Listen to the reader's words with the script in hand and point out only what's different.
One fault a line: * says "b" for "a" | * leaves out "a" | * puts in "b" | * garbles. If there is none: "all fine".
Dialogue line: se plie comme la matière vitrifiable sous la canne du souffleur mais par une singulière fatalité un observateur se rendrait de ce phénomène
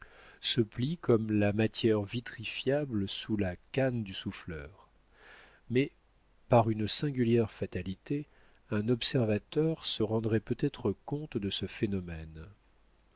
* puts in "peut être compte"